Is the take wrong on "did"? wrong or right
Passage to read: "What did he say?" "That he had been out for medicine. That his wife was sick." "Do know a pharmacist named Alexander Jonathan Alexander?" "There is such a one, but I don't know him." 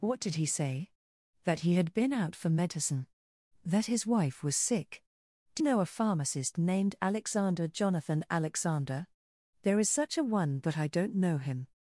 right